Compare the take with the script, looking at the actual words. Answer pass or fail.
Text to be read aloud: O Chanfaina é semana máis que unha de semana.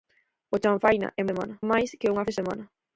pass